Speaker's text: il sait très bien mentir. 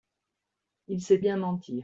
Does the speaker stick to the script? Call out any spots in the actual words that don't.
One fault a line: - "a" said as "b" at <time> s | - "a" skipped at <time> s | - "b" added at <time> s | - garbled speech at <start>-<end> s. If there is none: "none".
- "très" skipped at 1.2 s